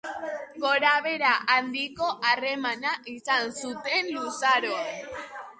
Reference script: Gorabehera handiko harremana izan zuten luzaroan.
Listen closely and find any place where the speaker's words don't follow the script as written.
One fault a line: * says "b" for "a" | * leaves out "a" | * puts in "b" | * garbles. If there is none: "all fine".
all fine